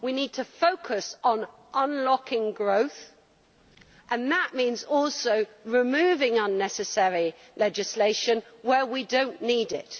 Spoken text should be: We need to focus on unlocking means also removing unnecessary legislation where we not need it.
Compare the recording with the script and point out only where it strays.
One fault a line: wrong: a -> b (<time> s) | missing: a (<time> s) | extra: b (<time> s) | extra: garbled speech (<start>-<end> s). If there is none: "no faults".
extra: growth and that (2.5 s)
extra: do (9.0 s)